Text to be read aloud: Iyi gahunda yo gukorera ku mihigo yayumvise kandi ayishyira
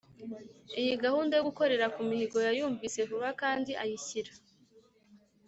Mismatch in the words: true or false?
true